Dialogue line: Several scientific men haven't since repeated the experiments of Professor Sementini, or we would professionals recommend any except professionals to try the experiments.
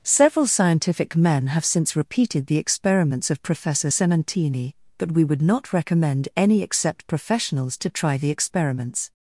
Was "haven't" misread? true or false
true